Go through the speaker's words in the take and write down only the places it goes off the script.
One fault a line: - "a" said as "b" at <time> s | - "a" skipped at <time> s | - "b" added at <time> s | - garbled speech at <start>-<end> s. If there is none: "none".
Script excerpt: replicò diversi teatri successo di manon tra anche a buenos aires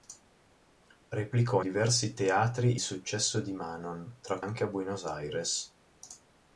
none